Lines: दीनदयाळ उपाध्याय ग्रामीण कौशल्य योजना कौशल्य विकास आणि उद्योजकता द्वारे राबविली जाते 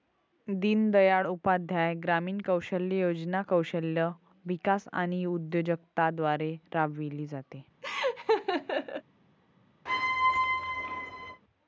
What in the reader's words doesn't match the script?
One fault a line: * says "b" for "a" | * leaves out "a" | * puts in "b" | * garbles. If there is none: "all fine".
all fine